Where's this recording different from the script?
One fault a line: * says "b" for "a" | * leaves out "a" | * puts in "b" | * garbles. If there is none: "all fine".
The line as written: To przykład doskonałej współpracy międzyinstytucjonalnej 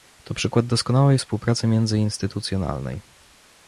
all fine